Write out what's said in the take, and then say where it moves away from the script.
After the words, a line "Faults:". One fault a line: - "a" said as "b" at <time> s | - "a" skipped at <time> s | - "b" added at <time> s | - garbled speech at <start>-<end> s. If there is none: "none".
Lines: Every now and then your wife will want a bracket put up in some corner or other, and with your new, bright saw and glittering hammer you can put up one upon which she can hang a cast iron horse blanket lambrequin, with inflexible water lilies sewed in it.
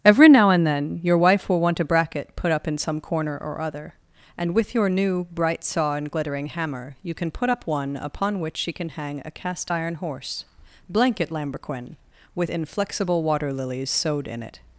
Every now and then your wife will want a bracket put up in some corner or other, and with your new, bright saw and glittering hammer you can put up one upon which she can hang a cast iron horse blanket lambrequin, with inflexible water lilies sewed in it.
Faults:
none